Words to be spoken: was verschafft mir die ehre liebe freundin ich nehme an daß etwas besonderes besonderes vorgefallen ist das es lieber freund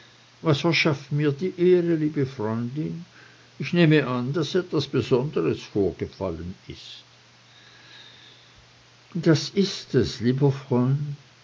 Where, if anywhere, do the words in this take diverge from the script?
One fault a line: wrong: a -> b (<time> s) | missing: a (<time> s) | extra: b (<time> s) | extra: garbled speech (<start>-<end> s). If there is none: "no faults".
missing: besonderes (5.6 s)
extra: ist (9.5 s)